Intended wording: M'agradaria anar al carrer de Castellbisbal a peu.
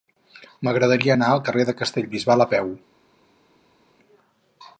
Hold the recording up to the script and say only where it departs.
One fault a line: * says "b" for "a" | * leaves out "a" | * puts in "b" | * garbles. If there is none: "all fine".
all fine